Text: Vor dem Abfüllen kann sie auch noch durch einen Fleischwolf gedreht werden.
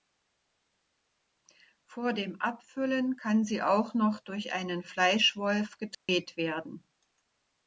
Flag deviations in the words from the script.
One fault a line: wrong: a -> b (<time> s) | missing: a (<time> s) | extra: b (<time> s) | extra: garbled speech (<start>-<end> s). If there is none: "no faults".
no faults